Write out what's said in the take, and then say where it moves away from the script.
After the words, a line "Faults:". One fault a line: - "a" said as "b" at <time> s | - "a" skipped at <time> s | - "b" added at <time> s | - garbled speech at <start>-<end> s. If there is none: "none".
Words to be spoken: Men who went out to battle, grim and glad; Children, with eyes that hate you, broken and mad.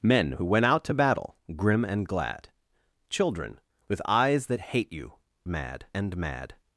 Men who went out to battle, grim and glad; Children, with eyes that hate you, mad and mad.
Faults:
- "broken" said as "mad" at 5.5 s